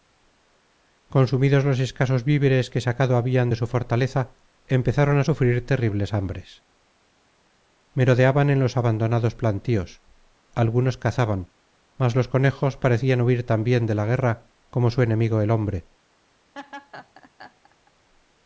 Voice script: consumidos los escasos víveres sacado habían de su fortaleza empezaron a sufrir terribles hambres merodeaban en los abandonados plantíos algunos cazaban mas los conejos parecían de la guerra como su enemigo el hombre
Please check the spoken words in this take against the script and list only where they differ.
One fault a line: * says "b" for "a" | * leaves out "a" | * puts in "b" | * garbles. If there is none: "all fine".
* puts in "que"
* puts in "huir también"